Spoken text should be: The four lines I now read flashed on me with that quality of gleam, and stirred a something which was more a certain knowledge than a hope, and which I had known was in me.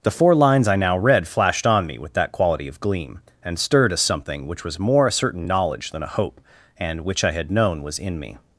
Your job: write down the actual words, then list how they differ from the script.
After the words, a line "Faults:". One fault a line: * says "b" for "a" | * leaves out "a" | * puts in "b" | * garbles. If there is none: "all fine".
The four lines I now read flashed on me with that quality of gleam, and stirred a something which was more a certain knowledge than a hope, and which I had known was in me.
Faults:
all fine